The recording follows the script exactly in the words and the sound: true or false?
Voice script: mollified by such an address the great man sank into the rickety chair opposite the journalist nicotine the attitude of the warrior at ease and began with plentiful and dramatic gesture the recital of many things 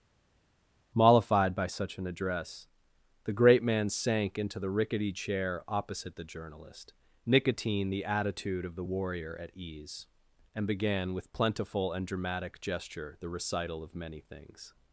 true